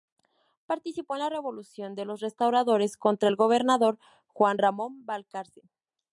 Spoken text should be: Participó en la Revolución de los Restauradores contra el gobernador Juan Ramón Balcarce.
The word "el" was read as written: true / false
true